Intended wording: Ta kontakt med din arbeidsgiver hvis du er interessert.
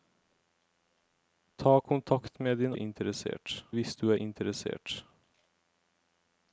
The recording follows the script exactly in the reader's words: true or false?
false